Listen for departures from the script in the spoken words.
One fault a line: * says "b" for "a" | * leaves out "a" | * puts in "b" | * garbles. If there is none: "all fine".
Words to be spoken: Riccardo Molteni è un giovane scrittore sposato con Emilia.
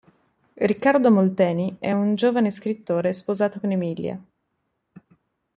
all fine